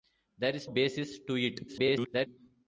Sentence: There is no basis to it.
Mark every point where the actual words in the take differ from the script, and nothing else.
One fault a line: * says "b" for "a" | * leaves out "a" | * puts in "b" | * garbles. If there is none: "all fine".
* leaves out "no"
* garbles